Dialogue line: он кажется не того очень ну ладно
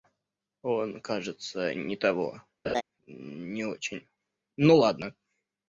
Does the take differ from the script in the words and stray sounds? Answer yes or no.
yes